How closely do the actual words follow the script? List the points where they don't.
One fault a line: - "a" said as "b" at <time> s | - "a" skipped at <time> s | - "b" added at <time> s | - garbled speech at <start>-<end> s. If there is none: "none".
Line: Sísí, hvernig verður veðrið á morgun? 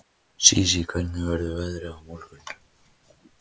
none